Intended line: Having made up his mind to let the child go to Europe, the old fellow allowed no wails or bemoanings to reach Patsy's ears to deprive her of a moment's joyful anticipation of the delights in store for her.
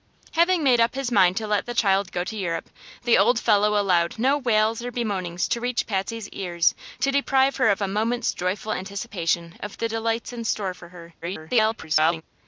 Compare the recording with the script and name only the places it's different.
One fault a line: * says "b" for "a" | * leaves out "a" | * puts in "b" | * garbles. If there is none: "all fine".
* garbles